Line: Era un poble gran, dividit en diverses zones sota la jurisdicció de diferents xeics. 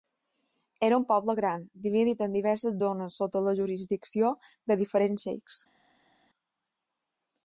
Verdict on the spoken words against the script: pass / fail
pass